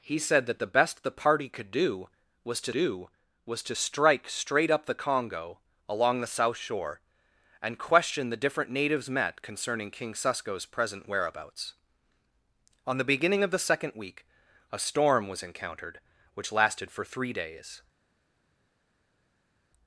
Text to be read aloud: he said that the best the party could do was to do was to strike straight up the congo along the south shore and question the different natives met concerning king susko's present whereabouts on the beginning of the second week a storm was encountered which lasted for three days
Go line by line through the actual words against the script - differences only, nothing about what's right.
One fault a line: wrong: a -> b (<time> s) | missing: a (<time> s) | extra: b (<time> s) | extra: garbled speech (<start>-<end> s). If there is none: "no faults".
no faults